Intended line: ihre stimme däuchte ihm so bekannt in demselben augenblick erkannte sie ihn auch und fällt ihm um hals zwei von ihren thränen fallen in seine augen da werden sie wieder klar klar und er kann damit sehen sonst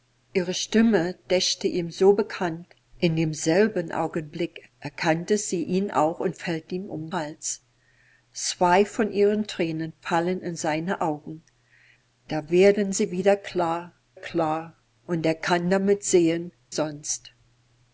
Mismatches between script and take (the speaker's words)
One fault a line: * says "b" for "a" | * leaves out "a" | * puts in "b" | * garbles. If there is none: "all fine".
all fine